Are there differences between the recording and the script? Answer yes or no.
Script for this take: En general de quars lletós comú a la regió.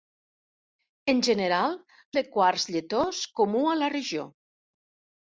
no